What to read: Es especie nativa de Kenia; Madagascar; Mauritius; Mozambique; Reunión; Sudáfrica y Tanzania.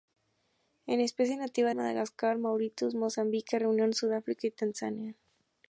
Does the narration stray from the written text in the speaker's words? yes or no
yes